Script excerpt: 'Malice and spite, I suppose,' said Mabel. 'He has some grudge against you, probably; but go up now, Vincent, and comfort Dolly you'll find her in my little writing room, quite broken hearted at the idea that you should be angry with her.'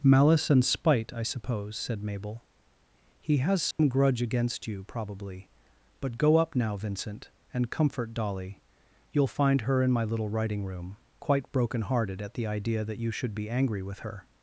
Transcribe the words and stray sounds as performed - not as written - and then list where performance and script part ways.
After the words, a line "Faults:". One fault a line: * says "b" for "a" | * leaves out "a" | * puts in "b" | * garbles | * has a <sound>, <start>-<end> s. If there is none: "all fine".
'Malice and spite, I suppose,' said Mabel. 'He has some grudge against you, probably; but go up now, Vincent, and comfort Dolly you'll find her in my little writing room, quite broken hearted at the idea that you should be angry with her.'
Faults:
* has a dropout, 3.7-3.8 s